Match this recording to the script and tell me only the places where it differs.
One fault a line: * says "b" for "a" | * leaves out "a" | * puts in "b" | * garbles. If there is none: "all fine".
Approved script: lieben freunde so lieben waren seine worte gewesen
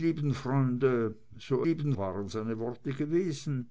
all fine